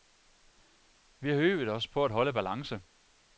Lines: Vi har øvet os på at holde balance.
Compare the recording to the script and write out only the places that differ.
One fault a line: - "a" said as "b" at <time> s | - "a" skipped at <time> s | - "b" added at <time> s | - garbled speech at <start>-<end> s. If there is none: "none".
none